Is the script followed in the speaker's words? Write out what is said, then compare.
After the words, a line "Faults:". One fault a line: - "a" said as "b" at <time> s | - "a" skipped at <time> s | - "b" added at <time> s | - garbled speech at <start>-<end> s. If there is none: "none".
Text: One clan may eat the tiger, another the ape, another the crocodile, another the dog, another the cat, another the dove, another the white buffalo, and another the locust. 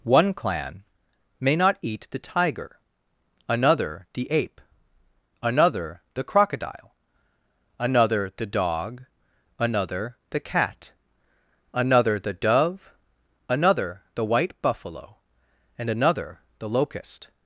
One clan may not eat the tiger, another the ape, another the crocodile, another the dog, another the cat, another the dove, another the white buffalo, and another the locust.
Faults:
- "not" added at 1.6 s